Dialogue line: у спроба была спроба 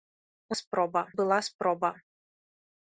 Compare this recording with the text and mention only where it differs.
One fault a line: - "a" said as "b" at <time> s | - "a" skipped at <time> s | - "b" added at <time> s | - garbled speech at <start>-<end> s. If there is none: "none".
none